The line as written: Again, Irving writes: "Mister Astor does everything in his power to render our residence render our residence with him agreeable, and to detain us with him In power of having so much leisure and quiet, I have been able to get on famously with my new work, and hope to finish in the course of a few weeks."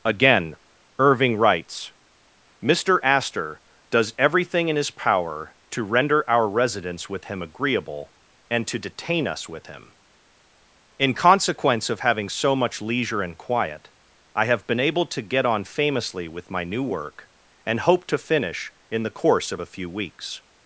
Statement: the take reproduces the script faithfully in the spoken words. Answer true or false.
false